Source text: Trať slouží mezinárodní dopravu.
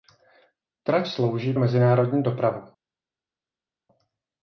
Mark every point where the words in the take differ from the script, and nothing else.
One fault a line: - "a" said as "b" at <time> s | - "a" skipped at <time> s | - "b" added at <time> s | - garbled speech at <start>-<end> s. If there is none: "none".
none